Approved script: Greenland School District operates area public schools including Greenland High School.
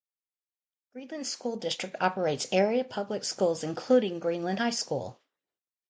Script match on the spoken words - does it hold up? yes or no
yes